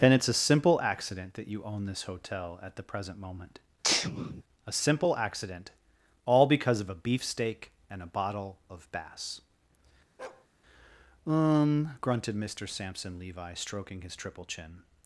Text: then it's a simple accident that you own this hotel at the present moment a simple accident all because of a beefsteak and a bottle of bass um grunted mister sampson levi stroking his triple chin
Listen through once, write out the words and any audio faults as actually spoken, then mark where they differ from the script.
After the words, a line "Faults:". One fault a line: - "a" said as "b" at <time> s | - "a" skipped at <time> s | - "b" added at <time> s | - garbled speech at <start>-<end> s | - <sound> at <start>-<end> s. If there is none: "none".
then it's a simple accident that you own this hotel at the present moment a simple accident all because of a beefsteak and a bottle of bass um grunted mister sampson levi stroking his triple chin
Faults:
- sneeze at 3.8-4.4 s
- bark at 10.2-10.5 s